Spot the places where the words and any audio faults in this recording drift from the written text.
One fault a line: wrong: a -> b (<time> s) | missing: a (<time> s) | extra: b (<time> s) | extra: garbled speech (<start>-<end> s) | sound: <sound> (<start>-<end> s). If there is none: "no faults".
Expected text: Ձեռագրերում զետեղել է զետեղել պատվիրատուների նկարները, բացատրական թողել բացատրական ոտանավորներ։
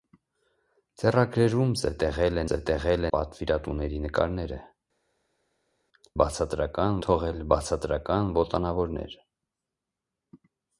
no faults